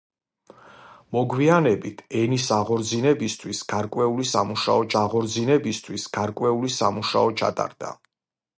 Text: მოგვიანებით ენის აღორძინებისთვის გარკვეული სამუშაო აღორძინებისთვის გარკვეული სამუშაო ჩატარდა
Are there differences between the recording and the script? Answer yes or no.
no